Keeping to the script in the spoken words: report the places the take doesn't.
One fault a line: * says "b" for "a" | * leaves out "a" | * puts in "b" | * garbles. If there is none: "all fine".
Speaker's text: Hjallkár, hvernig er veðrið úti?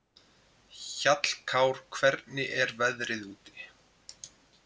all fine